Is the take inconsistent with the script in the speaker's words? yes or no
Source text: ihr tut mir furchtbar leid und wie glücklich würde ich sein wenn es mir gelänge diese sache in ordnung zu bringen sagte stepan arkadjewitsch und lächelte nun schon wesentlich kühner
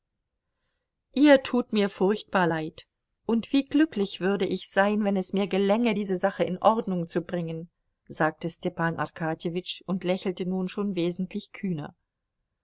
no